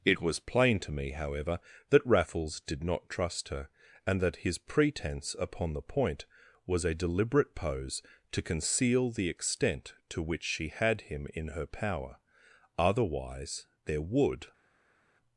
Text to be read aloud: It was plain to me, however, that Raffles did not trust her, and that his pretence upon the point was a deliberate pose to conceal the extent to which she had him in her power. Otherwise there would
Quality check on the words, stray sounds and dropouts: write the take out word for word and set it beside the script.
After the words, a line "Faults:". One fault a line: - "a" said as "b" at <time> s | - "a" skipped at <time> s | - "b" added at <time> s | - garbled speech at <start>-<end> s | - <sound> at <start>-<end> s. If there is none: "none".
It was plain to me, however, that Raffles did not trust her, and that his pretence upon the point was a deliberate pose to conceal the extent to which she had him in her power. Otherwise there would
Faults:
none